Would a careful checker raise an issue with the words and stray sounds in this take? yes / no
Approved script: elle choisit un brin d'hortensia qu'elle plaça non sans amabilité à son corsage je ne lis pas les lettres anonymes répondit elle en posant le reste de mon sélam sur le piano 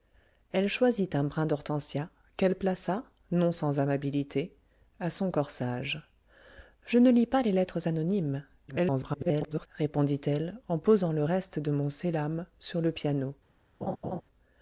yes